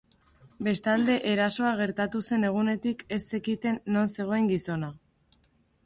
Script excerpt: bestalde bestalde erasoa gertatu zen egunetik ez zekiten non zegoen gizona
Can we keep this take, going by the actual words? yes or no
no